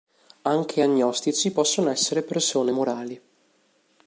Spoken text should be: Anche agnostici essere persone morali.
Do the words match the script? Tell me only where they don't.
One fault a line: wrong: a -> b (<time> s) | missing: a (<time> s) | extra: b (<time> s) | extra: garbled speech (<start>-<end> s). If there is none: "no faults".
extra: possono (1.5 s)